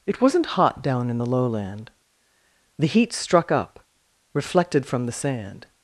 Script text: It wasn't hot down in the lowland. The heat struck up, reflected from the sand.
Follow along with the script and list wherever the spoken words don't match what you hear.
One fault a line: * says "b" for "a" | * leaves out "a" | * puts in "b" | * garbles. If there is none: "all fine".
all fine